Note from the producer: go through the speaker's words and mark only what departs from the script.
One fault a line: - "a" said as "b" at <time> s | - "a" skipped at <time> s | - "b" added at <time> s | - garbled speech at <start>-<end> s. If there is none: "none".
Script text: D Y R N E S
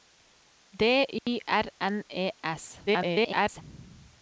- garbled speech at 2.9-3.6 s